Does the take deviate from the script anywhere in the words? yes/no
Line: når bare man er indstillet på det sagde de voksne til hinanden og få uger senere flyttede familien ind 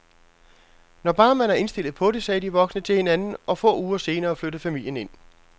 no